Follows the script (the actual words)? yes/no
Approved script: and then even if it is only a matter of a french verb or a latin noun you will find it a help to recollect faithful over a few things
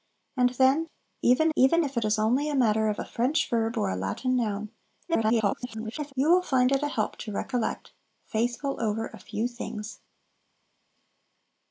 no